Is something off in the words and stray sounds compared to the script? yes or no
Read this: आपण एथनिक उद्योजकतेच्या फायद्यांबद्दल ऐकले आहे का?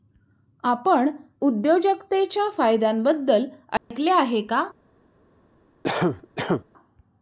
yes